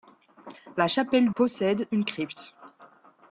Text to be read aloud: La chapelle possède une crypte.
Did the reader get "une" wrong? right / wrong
right